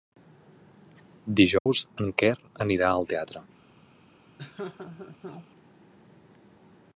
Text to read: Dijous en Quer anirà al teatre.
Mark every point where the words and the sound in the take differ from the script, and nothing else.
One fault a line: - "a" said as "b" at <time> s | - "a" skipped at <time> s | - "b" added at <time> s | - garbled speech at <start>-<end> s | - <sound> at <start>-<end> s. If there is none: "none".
- dropout at 1.6-1.7 s
- laugh at 4.4-5.5 s